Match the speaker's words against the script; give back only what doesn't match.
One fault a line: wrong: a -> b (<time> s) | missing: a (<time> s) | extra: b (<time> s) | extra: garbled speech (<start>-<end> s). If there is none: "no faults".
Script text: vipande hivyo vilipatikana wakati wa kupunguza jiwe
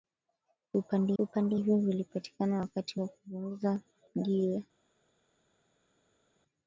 extra: vipande (1.2 s)